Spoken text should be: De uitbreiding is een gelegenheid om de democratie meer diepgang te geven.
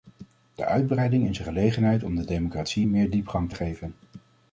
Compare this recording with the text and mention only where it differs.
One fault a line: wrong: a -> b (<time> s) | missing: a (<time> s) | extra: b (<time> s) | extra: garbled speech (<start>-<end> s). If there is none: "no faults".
no faults